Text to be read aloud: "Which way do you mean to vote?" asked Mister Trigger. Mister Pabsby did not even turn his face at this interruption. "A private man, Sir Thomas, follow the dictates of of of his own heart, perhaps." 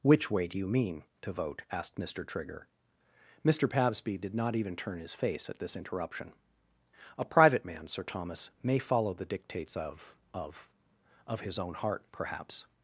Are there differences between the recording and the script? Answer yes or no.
yes